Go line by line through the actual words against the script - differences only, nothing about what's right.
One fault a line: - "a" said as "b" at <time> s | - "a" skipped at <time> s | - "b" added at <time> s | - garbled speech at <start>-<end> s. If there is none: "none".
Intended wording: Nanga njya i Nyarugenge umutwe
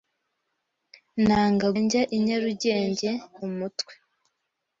none